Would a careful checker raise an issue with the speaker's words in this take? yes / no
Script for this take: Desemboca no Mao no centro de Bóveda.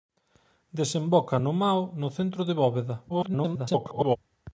yes